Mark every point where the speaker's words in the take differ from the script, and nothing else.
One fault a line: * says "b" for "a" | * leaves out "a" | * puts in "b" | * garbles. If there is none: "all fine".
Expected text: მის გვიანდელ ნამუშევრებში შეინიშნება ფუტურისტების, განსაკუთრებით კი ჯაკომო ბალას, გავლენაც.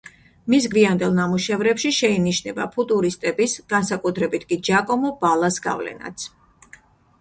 all fine